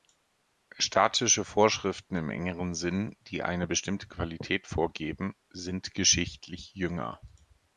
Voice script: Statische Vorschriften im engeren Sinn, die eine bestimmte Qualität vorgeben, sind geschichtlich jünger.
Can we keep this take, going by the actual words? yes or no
yes